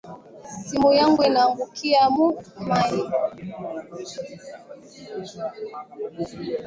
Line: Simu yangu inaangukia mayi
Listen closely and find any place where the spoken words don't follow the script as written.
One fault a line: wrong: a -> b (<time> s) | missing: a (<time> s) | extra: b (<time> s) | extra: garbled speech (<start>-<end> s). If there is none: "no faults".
extra: mu (2.1 s)